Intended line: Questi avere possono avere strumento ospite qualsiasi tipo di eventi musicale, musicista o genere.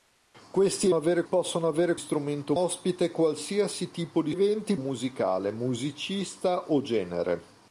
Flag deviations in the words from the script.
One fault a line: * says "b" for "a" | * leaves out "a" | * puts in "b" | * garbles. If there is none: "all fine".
all fine